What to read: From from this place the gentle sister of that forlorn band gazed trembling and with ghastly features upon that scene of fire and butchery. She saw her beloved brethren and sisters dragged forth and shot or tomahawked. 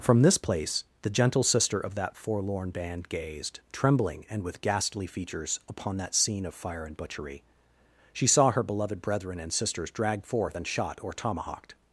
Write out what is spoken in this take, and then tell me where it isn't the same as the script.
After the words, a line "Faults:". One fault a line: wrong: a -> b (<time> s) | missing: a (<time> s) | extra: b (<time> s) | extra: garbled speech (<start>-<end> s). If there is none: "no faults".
From this place the gentle sister of that forlorn band gazed trembling and with ghastly features upon that scene of fire and butchery. She saw her beloved brethren and sisters dragged forth and shot or tomahawked.
Faults:
missing: from (0.2 s)